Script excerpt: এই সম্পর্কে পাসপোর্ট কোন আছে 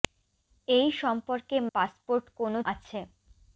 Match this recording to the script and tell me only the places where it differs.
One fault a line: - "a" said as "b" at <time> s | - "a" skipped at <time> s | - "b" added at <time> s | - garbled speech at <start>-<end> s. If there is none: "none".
none